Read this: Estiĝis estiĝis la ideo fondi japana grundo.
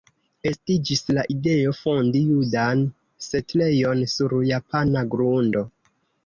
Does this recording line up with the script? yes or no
no